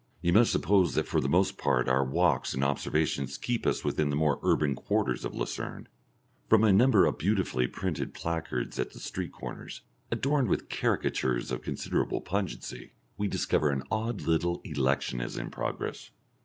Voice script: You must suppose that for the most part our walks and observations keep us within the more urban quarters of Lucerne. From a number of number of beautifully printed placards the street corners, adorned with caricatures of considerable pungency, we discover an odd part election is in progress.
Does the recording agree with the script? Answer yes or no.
no